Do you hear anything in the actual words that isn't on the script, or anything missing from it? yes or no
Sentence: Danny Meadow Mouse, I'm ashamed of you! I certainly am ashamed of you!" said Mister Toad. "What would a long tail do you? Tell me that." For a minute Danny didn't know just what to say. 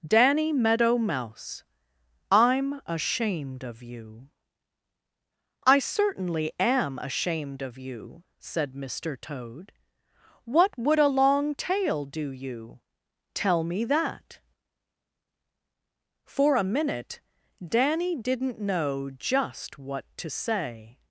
no